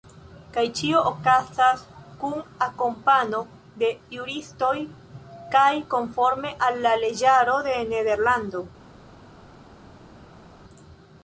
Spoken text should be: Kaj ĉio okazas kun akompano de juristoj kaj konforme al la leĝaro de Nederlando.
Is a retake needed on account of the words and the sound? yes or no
no